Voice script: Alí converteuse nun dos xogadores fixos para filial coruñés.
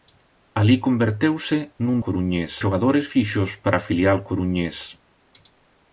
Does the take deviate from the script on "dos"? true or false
true